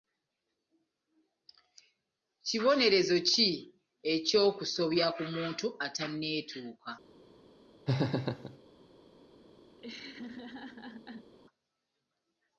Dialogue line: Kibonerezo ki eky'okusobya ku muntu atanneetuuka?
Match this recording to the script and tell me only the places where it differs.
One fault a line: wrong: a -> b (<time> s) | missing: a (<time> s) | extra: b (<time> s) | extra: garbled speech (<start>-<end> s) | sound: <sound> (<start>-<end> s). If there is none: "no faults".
sound: laugh (7.9-8.6 s)
sound: laugh (9.8-11.3 s)